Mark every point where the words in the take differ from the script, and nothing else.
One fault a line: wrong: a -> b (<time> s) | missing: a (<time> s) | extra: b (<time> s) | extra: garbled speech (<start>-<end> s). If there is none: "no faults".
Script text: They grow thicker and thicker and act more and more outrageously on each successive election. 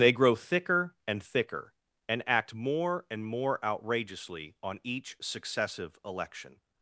no faults